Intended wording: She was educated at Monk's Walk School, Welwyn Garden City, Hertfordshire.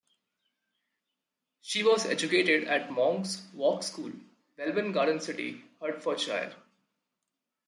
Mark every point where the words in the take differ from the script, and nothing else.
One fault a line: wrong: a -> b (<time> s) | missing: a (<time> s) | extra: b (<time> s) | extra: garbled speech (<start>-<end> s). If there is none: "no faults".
no faults